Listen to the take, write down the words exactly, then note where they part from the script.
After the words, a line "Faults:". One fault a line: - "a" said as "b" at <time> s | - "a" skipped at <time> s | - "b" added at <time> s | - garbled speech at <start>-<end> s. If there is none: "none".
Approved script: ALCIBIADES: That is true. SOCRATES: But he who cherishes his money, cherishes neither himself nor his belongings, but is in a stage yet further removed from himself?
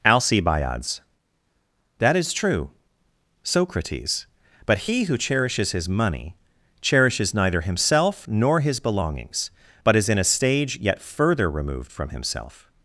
ALCIBIADES: That is true. SOCRATES: But he who cherishes his money, cherishes neither himself nor his belongings, but is in a stage yet further removed from himself?
Faults:
none